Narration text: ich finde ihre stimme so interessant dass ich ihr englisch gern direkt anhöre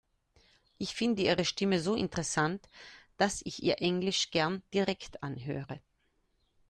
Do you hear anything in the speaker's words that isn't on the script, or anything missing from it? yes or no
no